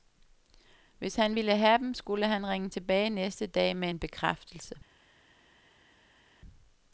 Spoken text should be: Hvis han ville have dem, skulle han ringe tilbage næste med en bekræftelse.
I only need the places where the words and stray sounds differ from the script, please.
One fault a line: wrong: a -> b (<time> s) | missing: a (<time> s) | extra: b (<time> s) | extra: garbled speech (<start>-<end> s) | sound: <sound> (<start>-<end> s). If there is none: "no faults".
extra: dag (3.5 s)